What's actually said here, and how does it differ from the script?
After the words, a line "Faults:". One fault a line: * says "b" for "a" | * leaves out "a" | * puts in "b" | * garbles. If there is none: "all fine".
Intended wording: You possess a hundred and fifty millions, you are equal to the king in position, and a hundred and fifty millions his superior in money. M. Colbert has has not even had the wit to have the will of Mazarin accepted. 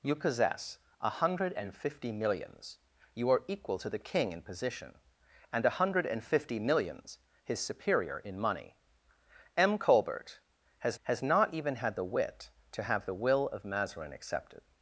You possess a hundred and fifty millions, you are equal to the king in position, and a hundred and fifty millions his superior in money. M. Colbert has has not even had the wit to have the will of Mazarin accepted.
Faults:
all fine